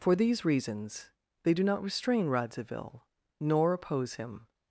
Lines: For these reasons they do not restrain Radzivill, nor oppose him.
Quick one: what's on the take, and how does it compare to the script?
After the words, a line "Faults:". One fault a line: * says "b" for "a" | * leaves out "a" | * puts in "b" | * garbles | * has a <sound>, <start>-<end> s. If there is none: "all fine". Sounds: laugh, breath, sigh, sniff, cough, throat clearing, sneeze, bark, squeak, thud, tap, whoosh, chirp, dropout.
For these reasons they do not restrain Radzivill, nor oppose him.
Faults:
all fine